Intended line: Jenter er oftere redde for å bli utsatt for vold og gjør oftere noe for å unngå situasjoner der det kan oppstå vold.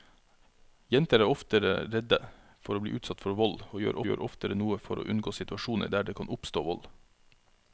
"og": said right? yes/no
yes